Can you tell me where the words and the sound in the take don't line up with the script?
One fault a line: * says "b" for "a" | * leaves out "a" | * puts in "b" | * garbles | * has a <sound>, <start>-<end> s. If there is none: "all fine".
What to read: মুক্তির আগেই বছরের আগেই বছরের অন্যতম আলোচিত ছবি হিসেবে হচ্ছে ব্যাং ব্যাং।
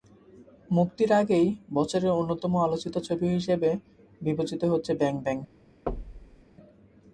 * leaves out "আগেই বছরের"
* puts in "বিবেচিত"
* has a thud, 5.9-6.4 s